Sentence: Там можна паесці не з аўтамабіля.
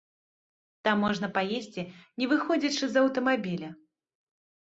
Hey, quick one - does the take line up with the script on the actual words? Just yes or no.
no